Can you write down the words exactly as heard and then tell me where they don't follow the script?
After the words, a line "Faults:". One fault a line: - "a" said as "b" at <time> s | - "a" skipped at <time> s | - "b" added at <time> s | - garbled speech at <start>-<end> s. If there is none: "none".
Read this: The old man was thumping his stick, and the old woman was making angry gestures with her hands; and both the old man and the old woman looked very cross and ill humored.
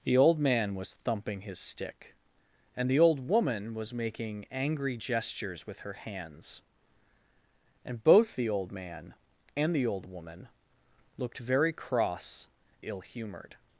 The old man was thumping his stick, and the old woman was making angry gestures with her hands; and both the old man and the old woman looked very cross ill humored.
Faults:
- "and" skipped at 12.5 s